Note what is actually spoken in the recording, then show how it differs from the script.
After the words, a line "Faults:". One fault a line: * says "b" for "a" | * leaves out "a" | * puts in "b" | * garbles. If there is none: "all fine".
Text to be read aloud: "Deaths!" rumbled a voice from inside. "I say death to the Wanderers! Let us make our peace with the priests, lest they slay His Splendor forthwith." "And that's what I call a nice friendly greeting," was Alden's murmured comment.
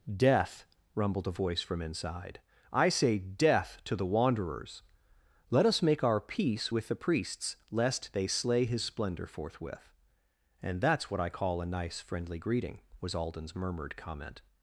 "Death!" rumbled a voice from inside. "I say death to the Wanderers! Let us make our peace with the priests, lest they slay His Splendor forthwith." "And that's what I call a nice friendly greeting," was Alden's murmured comment.
Faults:
* says "Death" for "Deaths"